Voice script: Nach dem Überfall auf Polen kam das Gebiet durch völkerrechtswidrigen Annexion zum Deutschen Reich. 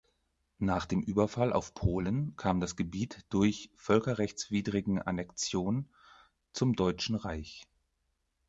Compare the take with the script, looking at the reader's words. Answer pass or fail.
pass